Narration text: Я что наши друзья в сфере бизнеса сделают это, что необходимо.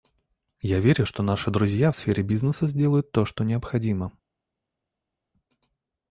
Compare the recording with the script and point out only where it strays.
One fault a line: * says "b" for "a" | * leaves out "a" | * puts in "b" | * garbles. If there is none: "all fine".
* puts in "верю"
* says "то" for "это"